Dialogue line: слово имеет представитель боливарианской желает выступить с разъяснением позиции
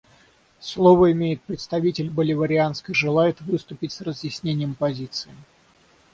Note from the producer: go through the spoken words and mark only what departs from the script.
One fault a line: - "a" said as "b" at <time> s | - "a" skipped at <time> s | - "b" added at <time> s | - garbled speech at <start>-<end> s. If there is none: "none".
none